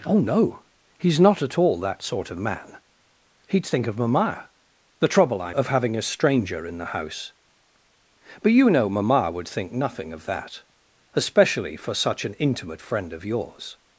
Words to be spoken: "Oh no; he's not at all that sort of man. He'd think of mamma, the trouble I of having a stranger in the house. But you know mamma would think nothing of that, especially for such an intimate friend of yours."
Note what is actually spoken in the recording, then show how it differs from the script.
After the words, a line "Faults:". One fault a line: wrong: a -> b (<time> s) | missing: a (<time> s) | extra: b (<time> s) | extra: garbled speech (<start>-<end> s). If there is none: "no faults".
"Oh no; he's not at all that sort of man. He'd think of mamma, the trouble I of having a stranger in the house. But you know mamma would think nothing of that, especially for such an intimate friend of yours."
Faults:
no faults